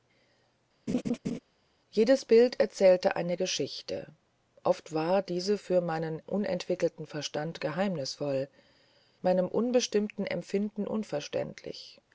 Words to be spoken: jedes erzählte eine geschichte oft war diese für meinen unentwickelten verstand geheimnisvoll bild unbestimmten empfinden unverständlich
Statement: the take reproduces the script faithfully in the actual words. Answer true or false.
false